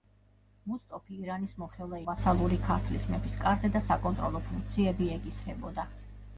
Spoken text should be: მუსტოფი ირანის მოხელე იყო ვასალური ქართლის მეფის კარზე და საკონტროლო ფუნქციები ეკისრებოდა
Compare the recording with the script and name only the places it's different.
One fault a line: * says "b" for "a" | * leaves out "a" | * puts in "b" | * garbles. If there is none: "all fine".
* leaves out "იყო"